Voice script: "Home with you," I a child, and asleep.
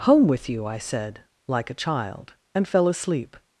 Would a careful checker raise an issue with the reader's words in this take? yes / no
yes